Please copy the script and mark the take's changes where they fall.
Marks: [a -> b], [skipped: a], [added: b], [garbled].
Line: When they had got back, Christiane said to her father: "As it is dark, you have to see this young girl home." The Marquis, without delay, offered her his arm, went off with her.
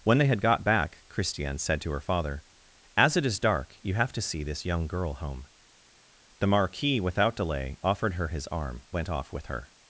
When they had got back, Christiane said to her father: "As it is dark, you have to see this young girl home." The Marquis, without delay, offered her his arm, went off with her.